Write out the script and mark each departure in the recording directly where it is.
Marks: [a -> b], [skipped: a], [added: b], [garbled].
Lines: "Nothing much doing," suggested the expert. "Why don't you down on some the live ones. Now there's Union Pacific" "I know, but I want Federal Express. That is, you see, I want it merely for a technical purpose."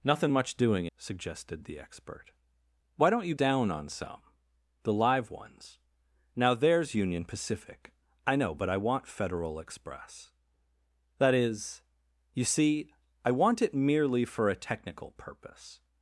"Nothing much doing," suggested the expert. "Why don't you down on some the live ones. Now there's Union Pacific" "I know, but I want Federal Express. That is, you see, I want it merely for a technical purpose."